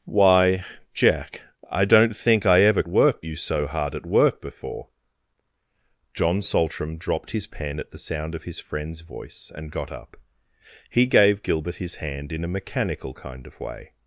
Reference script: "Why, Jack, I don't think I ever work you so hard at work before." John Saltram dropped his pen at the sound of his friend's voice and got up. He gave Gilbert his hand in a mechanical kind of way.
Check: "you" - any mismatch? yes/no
no